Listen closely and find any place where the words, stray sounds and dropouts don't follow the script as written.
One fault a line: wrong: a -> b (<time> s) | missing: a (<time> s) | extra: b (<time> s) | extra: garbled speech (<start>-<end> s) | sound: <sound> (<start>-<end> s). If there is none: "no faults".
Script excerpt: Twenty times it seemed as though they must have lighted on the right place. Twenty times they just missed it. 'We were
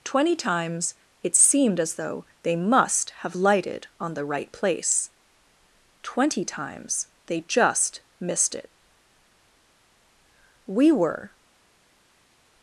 no faults